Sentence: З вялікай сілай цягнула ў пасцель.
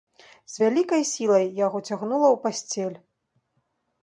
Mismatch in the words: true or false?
true